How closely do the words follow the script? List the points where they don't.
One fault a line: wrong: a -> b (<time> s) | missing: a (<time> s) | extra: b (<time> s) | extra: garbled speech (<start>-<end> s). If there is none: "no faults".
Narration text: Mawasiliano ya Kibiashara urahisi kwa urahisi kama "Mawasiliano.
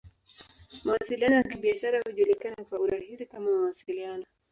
wrong: urahisi -> hujulikana (2.0 s)